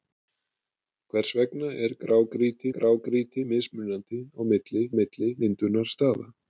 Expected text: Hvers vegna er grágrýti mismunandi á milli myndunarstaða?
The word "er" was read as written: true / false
true